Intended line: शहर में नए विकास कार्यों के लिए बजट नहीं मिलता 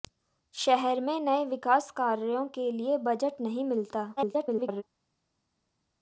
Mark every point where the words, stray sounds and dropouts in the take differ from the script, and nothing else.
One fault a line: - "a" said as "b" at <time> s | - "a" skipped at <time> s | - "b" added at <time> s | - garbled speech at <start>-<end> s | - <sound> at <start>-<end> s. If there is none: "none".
- garbled speech at 4.2-4.8 s